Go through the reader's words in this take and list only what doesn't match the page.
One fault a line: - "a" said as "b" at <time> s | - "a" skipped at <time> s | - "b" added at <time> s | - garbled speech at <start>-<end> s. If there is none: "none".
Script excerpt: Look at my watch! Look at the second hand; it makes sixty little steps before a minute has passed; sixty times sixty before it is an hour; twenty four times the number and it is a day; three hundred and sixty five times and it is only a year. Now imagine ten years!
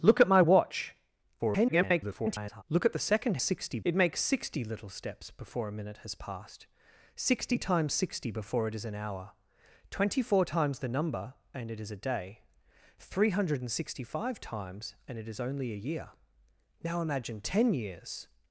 - garbled speech at 1.4-2.6 s
- "hand" said as "sixty" at 3.4 s